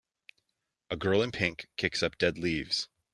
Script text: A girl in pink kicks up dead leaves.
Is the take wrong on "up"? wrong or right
right